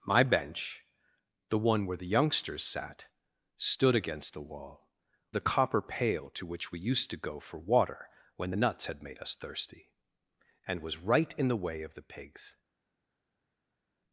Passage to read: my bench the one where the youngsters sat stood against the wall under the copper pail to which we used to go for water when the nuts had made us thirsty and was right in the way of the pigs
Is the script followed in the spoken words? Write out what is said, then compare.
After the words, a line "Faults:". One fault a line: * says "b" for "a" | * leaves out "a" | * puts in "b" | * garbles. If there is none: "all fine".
my bench the one where the youngsters sat stood against the wall the copper pail to which we used to go for water when the nuts had made us thirsty and was right in the way of the pigs
Faults:
* leaves out "under"